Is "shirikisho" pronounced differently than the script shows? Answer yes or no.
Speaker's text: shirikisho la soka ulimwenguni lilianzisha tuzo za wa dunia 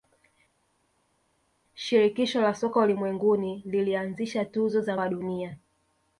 no